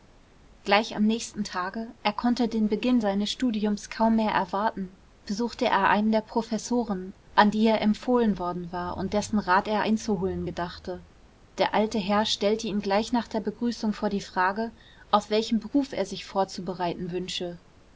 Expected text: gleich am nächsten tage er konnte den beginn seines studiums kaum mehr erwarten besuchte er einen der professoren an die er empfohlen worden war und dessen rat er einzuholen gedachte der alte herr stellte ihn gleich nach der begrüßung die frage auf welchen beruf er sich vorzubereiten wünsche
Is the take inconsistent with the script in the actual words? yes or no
yes